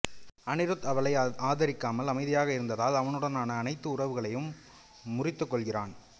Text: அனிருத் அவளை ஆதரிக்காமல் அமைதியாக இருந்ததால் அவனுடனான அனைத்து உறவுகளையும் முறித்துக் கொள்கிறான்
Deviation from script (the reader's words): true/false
false